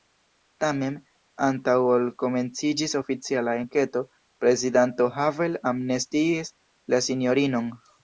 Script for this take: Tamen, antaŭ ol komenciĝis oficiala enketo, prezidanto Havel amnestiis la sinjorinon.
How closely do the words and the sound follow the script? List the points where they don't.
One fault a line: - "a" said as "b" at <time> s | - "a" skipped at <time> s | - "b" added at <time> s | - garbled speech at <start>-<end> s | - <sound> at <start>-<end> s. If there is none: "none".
none